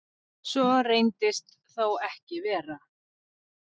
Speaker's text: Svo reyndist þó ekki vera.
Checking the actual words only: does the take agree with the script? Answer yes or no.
yes